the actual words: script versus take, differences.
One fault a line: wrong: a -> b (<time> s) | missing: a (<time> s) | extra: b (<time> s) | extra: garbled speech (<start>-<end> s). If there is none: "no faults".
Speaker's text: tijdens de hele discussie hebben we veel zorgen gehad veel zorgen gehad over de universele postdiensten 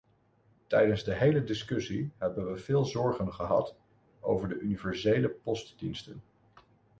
missing: veel zorgen gehad (3.8 s)